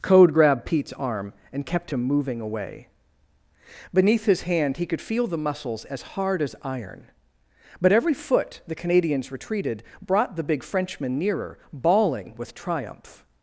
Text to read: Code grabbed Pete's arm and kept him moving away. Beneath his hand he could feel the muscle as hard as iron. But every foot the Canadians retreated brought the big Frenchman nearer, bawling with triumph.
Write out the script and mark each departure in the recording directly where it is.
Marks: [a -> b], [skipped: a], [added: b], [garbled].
Code grabbed Pete's arm and kept him moving away. Beneath his hand he could feel the [muscle -> muscles] as hard as iron. But every foot the Canadians retreated brought the big Frenchman nearer, bawling with triumph.